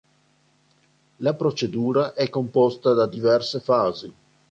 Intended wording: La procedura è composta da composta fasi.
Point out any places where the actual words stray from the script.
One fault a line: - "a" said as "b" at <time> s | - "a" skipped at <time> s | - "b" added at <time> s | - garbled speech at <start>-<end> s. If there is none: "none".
- "composta" said as "diverse" at 3.0 s